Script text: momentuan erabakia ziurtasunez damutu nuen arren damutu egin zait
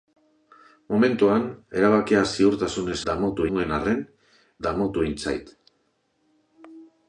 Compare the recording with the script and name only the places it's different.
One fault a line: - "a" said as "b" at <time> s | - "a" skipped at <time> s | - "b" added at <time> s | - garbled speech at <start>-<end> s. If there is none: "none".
none